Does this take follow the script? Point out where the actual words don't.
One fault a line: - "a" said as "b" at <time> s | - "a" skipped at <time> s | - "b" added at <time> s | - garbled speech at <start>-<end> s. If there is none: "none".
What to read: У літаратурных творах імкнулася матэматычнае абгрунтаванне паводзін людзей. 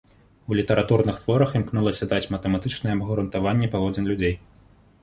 - "даць" added at 2.1 s